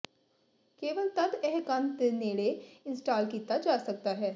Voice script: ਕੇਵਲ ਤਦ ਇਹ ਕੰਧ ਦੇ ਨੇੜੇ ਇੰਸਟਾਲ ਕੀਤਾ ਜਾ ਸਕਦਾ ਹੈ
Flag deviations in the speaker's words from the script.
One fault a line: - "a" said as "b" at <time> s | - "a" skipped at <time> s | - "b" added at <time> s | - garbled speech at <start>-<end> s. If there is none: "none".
none